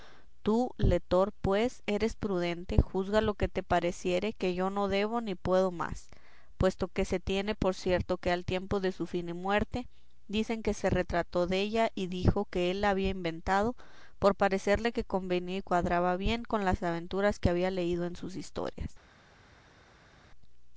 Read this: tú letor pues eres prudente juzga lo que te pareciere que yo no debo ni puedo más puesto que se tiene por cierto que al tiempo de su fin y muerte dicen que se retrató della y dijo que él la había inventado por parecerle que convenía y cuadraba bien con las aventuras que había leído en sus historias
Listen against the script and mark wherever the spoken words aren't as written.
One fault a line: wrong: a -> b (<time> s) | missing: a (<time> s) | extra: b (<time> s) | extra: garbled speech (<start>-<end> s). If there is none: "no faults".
no faults